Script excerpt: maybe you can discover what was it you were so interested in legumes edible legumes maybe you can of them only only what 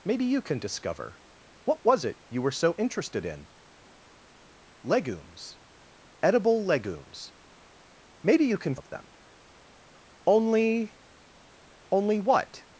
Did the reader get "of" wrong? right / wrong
right